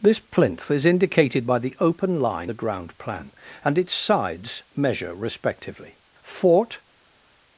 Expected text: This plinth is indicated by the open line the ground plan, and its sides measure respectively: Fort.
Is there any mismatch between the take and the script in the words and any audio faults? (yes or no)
no